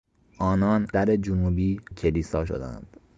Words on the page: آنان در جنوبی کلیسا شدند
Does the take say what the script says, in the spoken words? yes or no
yes